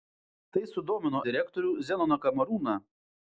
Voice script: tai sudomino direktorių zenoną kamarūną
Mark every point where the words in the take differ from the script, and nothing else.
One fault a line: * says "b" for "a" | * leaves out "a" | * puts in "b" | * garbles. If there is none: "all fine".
all fine